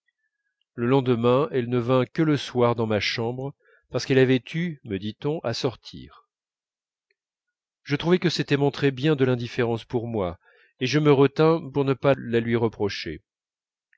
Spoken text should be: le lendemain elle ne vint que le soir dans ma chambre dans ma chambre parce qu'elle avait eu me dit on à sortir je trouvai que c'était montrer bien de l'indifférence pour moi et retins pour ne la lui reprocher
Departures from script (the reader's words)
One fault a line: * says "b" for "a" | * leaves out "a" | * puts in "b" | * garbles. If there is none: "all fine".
* leaves out "dans ma chambre"
* puts in "je me"
* puts in "pas"